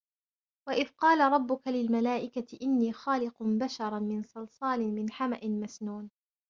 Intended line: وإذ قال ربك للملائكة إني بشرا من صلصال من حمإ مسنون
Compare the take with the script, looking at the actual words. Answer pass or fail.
fail